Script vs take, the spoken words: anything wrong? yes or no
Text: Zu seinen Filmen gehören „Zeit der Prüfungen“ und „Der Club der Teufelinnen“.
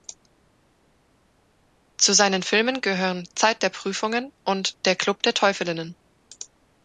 no